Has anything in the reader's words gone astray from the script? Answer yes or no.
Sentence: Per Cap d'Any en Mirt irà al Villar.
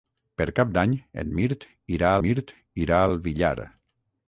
yes